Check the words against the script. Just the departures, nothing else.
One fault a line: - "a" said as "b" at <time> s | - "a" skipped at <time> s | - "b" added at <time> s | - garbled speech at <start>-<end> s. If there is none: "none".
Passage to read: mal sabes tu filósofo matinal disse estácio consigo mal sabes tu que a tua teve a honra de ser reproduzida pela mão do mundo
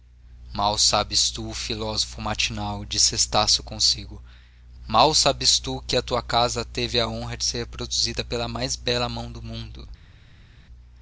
- "casa" added at 6.2 s
- "mais bela" added at 8.5 s